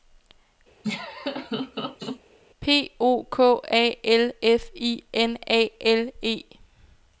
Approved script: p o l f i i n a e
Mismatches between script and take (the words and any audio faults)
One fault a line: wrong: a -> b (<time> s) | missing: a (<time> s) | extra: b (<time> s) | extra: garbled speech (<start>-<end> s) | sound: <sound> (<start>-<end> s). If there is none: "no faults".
sound: laugh (0.8-2.2 s)
extra: k a (3.3 s)
missing: i (5.0 s)
extra: l (5.8 s)